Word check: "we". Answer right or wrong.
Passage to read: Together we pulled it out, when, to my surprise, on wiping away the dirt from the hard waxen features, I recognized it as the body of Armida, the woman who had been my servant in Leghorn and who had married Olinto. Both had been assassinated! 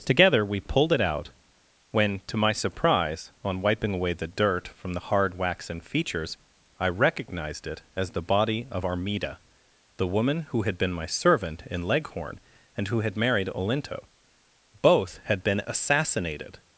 right